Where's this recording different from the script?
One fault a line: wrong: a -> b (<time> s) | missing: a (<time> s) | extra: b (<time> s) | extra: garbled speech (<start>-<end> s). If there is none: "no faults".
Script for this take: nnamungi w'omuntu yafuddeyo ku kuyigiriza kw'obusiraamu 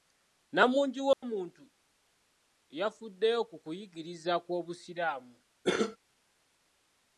no faults